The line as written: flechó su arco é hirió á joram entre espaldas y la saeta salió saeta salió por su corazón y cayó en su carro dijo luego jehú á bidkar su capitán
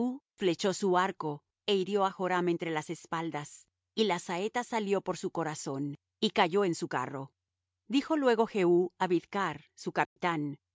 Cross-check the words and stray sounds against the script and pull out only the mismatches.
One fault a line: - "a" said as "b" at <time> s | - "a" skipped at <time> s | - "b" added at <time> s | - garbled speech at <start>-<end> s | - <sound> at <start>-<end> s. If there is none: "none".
- "las" added at 2.7 s
- "saeta salió" skipped at 5.0 s
- dropout at 10.0-10.2 s